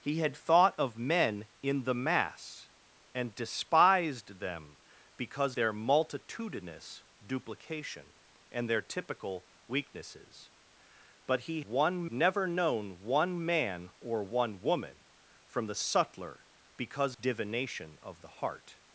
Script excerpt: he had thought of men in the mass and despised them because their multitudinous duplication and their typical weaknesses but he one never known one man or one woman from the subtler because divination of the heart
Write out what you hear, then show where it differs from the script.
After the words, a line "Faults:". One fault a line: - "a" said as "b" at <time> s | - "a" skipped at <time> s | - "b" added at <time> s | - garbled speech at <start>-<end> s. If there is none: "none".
he had thought of men in the mass and despised them because their multitudinous duplication and their typical weaknesses but he one never known one man or one woman from the subtler because divination of the heart
Faults:
none